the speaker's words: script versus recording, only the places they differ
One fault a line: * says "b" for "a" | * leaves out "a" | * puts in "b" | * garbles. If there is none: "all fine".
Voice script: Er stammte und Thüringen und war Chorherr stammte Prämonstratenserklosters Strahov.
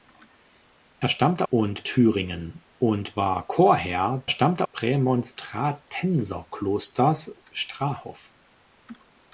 all fine